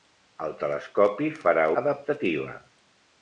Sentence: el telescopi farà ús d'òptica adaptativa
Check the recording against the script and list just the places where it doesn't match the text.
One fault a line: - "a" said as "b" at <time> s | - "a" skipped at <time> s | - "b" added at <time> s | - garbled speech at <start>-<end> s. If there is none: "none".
- "ús d'òptica" skipped at 1.7 s